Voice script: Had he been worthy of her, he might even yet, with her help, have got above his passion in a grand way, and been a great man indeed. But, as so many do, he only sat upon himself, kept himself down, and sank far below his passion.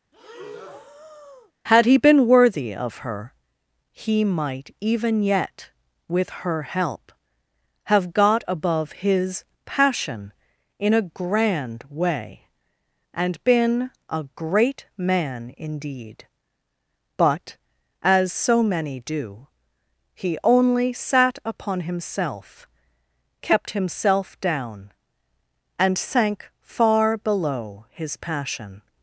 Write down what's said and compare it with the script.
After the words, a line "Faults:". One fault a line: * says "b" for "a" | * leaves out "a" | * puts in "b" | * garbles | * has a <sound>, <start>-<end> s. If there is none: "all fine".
Had he been worthy of her, he might even yet, with her help, have got above his passion in a grand way, and been a great man indeed. But, as so many do, he only sat upon himself, kept himself down, and sank far below his passion.
Faults:
* has a breath, 0.1-1.5 s